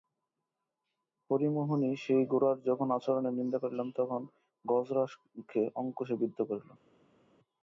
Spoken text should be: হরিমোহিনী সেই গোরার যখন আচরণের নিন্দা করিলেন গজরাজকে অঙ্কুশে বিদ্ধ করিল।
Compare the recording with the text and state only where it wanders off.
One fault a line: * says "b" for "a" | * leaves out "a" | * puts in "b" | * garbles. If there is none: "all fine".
* puts in "তখন"